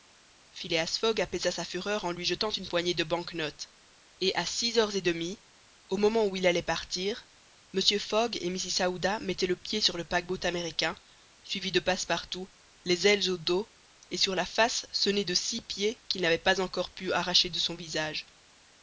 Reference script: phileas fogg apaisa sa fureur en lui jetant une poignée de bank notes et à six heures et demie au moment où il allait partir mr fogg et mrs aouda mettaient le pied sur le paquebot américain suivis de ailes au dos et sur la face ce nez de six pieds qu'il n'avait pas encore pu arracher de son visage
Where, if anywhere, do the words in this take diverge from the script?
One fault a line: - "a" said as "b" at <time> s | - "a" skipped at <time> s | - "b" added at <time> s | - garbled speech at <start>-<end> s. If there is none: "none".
- "passepartout les" added at 11.8 s